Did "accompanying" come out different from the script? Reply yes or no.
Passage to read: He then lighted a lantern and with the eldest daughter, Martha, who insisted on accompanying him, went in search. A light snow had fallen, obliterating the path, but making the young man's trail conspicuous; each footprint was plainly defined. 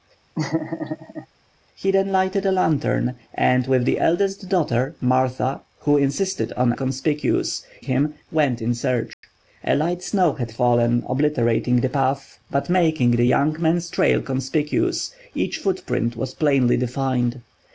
yes